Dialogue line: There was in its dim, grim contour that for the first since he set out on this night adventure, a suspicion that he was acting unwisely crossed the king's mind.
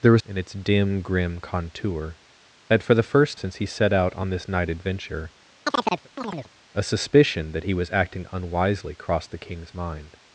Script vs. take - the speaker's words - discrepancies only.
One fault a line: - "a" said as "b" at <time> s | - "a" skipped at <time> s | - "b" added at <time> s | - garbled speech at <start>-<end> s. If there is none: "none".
none